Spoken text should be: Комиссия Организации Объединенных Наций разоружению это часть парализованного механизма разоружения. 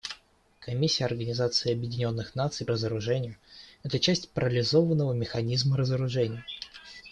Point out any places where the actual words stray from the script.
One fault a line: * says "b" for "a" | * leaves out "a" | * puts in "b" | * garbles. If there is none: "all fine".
all fine